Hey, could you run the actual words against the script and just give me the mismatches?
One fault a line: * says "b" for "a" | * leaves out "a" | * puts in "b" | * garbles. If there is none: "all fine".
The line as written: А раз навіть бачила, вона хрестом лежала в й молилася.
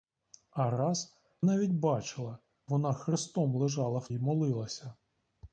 all fine